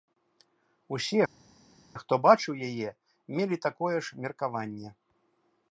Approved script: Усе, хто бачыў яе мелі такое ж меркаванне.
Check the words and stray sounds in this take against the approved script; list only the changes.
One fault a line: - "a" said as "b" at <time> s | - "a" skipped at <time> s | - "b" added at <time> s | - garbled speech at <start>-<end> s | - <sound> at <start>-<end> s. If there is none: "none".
none